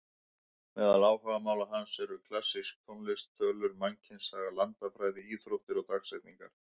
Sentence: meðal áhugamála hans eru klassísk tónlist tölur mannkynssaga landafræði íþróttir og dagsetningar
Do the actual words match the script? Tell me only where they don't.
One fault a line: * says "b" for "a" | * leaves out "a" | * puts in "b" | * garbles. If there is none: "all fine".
all fine